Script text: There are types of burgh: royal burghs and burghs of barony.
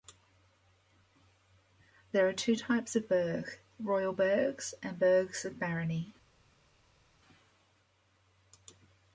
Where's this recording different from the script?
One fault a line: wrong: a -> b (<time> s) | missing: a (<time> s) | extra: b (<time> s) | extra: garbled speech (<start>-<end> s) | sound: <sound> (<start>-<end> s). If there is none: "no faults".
extra: two (2.3 s)